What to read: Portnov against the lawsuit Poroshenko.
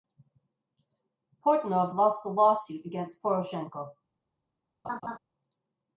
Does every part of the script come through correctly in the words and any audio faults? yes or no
no